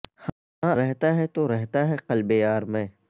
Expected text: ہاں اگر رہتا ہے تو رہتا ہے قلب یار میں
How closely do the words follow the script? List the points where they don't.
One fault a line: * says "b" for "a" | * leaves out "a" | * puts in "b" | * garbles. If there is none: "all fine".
* leaves out "اگر"